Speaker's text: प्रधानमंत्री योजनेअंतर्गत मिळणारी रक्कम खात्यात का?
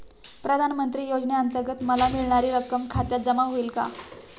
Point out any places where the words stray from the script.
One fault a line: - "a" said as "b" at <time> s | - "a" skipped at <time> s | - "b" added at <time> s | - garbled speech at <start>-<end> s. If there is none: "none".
- "मला" added at 1.8 s
- "जमा होईल" added at 3.2 s